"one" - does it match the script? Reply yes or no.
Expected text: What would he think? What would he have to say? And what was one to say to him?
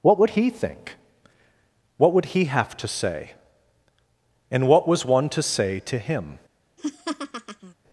yes